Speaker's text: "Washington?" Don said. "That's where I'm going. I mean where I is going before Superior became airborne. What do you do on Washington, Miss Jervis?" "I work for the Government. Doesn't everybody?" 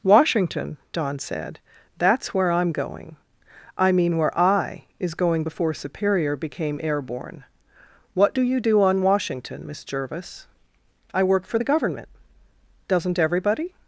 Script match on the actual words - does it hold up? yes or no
yes